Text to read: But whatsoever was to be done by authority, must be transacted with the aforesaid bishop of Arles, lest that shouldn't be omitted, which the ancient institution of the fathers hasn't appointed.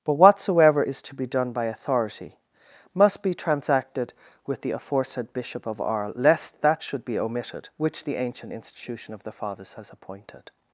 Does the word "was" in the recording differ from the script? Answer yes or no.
yes